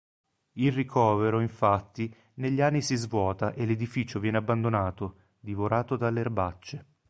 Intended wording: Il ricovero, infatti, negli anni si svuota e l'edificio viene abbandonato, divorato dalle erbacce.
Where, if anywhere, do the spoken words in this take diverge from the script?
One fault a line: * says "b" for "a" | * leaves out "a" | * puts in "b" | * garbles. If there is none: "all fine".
all fine